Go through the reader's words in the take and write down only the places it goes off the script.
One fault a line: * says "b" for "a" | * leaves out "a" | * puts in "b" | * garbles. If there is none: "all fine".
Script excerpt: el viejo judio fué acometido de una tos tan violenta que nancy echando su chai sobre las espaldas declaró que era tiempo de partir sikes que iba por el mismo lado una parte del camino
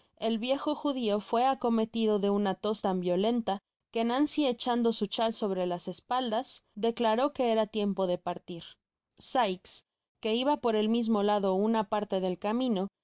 all fine